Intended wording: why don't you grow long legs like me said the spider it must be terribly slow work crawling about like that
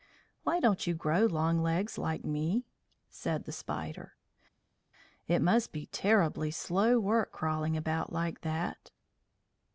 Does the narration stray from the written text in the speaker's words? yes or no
no